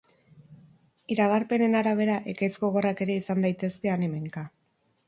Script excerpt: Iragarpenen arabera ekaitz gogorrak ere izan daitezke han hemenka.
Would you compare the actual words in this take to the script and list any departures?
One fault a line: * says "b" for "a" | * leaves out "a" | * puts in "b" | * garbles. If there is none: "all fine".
all fine